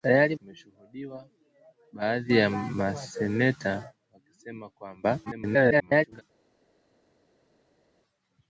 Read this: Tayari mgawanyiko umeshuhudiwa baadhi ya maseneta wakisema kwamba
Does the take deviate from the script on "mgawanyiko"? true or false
true